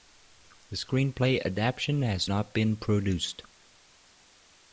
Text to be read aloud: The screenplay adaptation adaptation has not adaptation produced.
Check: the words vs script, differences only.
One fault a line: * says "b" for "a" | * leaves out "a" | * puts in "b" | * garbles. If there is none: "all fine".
* leaves out "adaptation"
* says "been" for "adaptation"